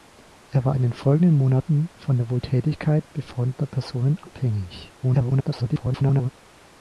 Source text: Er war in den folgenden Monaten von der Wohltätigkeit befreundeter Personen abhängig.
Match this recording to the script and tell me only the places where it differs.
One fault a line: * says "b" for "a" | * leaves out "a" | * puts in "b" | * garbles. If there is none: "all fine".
* garbles